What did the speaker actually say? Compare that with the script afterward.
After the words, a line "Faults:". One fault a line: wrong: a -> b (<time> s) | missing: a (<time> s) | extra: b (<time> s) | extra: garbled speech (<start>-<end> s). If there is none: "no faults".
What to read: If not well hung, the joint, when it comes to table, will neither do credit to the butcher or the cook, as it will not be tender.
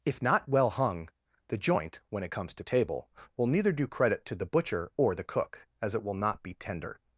If not well hung, the joint, when it comes to table, will neither do credit to the butcher or the cook, as it will not be tender.
Faults:
no faults